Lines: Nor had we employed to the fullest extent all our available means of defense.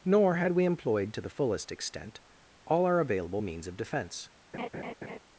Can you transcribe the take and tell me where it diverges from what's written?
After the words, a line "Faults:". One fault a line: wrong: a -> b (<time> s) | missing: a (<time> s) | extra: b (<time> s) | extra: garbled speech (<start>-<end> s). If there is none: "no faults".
Nor had we employed to the fullest extent all our available means of defense.
Faults:
no faults